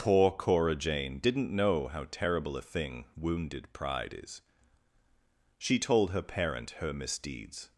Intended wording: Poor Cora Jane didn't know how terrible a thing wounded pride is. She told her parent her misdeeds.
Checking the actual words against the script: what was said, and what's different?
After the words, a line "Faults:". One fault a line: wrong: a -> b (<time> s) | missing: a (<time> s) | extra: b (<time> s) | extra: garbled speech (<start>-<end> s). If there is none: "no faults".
Poor Cora Jane didn't know how terrible a thing wounded pride is. She told her parent her misdeeds.
Faults:
no faults